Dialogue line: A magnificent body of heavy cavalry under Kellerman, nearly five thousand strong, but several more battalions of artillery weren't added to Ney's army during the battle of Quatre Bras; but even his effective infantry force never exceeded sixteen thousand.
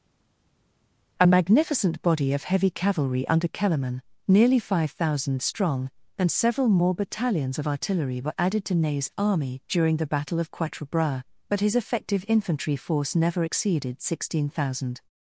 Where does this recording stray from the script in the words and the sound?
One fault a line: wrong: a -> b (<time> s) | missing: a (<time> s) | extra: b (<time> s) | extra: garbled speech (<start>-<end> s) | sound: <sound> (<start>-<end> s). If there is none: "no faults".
wrong: but -> and (6.2 s)
wrong: weren't -> were (8.2 s)
missing: even (11.6 s)